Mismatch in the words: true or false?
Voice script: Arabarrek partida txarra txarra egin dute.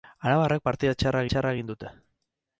false